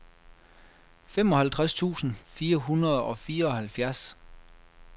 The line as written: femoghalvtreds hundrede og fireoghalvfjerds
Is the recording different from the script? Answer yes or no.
yes